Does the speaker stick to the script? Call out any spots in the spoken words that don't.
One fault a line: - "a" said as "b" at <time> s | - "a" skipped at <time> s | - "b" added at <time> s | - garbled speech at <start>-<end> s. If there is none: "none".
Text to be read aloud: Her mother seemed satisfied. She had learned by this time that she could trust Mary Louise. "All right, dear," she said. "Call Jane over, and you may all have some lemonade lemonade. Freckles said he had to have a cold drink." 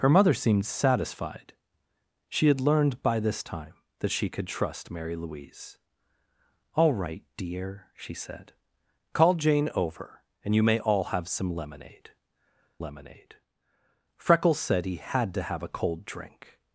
none